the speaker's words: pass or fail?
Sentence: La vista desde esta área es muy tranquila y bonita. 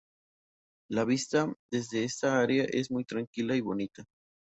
pass